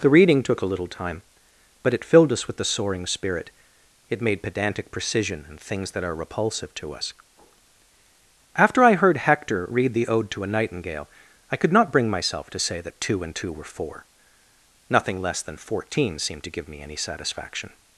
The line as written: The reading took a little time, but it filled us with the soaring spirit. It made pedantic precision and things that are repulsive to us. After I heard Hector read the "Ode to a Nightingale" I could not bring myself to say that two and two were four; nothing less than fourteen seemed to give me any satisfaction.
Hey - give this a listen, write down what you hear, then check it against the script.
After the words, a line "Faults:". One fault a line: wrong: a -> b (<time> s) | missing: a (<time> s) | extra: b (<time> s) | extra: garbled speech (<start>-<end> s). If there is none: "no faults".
The reading took a little time, but it filled us with the soaring spirit. It made pedantic precision and things that are repulsive to us. After I heard Hector read the "Ode to a Nightingale" I could not bring myself to say that two and two were four; nothing less than fourteen seemed to give me any satisfaction.
Faults:
no faults